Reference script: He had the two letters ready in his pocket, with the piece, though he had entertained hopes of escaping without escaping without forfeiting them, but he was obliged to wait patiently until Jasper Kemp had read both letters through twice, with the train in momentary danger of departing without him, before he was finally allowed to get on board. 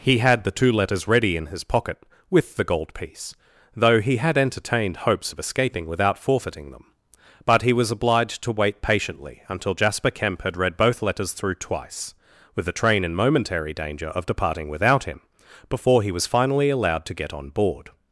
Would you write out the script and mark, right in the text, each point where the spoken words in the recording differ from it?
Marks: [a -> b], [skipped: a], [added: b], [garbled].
He had the two letters ready in his pocket, with the [added: gold] piece, though he had entertained hopes of escaping without [skipped: escaping without] forfeiting them, but he was obliged to wait patiently until Jasper Kemp had read both letters through twice, with the train in momentary danger of departing without him, before he was finally allowed to get on board.